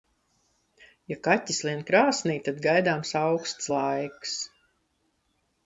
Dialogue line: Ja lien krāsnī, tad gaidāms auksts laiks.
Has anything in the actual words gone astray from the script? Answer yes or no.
yes